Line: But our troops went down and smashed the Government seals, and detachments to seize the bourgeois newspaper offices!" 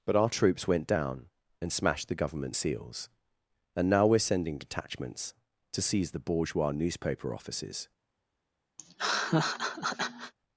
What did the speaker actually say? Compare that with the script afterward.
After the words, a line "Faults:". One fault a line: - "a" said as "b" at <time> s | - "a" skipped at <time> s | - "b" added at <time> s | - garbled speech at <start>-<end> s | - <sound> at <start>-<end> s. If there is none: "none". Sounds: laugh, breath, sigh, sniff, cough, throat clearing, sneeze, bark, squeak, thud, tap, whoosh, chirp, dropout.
But our troops went down and smashed the Government seals, and now we're sending detachments to seize the bourgeois newspaper offices!"
Faults:
- "now we're sending" added at 3.9 s
- laugh at 8.8-10.3 s